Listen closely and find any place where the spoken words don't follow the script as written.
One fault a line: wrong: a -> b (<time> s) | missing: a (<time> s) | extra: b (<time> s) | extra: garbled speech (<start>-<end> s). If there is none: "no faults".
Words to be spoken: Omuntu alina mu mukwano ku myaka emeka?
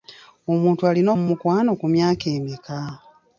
no faults